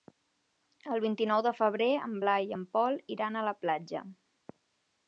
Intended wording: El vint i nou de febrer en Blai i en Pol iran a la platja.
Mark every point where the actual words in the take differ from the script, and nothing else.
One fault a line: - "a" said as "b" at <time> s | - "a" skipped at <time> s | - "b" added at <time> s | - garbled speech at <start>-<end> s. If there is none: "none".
none